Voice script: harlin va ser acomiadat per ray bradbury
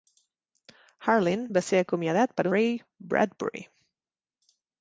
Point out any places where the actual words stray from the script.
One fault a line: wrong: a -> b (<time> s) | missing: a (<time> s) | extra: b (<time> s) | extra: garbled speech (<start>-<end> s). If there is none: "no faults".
no faults